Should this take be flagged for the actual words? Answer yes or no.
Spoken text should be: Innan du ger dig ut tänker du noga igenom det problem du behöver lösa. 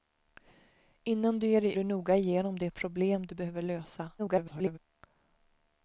yes